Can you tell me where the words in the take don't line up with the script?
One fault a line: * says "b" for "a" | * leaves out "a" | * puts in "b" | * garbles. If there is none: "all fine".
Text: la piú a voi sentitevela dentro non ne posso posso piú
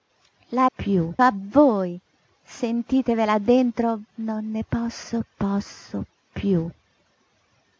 all fine